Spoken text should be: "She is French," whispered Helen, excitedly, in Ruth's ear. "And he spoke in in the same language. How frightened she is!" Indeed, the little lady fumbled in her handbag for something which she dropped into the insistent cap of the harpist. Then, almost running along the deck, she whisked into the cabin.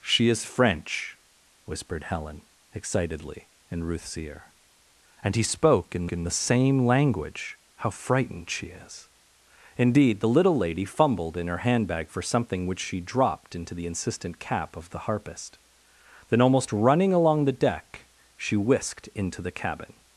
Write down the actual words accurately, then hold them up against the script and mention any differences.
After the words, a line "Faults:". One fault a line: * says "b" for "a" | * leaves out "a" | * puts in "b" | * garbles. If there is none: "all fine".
"She is French," whispered Helen, excitedly, in Ruth's ear. "And he spoke in in the same language. How frightened she is!" Indeed, the little lady fumbled in her handbag for something which she dropped into the insistent cap of the harpist. Then, almost running along the deck, she whisked into the cabin.
Faults:
all fine